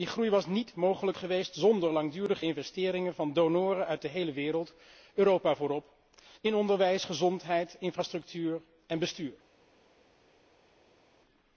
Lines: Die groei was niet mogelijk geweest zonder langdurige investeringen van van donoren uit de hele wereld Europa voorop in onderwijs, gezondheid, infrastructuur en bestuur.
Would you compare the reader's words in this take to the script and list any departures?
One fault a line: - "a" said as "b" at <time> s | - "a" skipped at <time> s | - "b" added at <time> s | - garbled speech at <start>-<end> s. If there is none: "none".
- "van" skipped at 3.3 s